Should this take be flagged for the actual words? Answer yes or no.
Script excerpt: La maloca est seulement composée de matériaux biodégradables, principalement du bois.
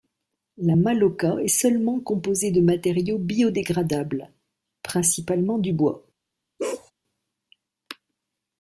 no